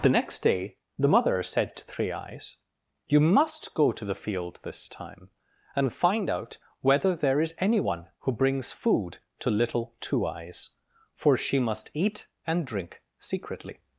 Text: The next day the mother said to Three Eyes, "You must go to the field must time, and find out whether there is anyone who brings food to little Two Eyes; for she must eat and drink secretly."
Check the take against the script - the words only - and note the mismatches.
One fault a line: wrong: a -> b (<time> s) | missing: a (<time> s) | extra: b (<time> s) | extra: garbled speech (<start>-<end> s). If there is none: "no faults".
wrong: must -> this (4.6 s)